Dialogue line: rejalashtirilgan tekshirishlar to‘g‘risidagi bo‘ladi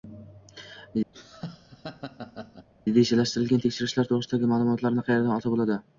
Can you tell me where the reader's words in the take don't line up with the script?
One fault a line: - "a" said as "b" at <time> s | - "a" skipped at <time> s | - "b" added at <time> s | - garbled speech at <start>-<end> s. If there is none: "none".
- "ma'lumotlarni qayerdan olsa" added at 4.5 s